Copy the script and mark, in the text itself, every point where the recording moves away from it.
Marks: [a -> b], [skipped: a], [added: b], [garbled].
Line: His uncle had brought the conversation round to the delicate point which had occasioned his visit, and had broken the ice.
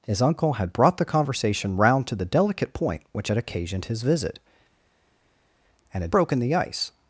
His uncle had brought the conversation round to the delicate point which had occasioned his visit, and had broken the ice.